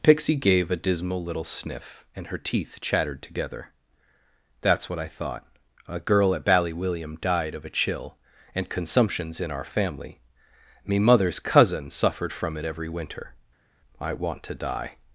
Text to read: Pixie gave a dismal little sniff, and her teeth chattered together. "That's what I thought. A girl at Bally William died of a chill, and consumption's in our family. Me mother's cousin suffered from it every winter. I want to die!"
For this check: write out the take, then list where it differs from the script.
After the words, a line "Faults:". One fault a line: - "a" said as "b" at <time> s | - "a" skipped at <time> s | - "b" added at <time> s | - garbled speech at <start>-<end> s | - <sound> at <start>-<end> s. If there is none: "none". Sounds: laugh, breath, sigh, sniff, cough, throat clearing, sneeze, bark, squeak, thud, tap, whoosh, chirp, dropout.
Pixie gave a dismal little sniff, and her teeth chattered together. "That's what I thought. A girl at Bally William died of a chill, and consumption's in our family. Me mother's cousin suffered from it every winter. I want to die!"
Faults:
none